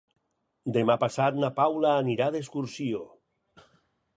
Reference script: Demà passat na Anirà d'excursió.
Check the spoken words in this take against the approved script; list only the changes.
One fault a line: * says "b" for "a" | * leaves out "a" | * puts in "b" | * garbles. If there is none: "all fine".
* puts in "Paula"